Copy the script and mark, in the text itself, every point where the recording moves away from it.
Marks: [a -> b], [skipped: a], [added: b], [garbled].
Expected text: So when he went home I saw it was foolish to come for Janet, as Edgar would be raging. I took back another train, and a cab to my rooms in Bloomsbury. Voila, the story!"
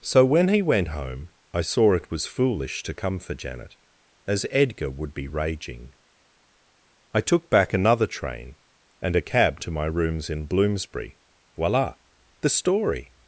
So when he went home I saw it was foolish to come for Janet, as Edgar would be raging. I took back another train, and a cab to my rooms in Bloomsbury. Voila, the story!"